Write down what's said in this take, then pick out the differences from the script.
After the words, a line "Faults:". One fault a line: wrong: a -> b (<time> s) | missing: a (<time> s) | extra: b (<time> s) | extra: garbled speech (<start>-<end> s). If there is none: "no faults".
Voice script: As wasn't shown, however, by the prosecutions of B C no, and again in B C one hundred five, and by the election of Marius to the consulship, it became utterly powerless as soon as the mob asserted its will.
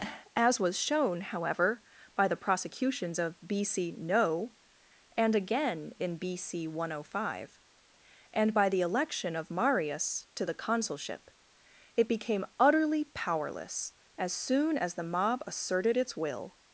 As was shown, however, by the prosecutions of B C no, and again in B C one hundred five, and by the election of Marius to the consulship, it became utterly powerless as soon as the mob asserted its will.
Faults:
wrong: wasn't -> was (0.6 s)